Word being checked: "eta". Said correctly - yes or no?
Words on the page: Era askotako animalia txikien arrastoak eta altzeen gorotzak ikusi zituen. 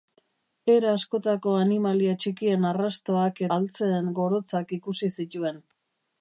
no